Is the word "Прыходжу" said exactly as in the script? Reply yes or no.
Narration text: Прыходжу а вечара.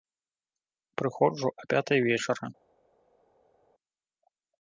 yes